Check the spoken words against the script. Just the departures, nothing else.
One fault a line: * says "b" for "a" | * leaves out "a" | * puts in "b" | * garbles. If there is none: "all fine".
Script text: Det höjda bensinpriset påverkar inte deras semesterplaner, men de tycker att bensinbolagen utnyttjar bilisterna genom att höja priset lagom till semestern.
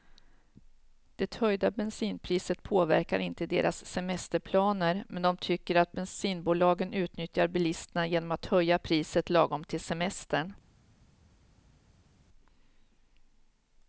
all fine